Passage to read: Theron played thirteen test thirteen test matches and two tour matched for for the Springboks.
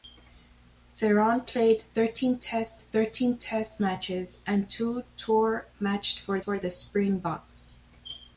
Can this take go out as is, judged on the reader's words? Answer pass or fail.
pass